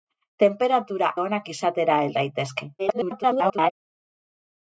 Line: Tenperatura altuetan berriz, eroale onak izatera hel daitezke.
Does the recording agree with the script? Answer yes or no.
no